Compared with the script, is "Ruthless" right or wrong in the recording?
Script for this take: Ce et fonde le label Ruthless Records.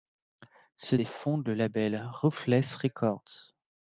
right